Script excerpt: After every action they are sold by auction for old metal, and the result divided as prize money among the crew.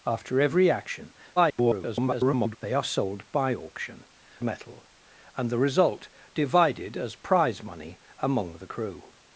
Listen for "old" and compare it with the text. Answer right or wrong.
wrong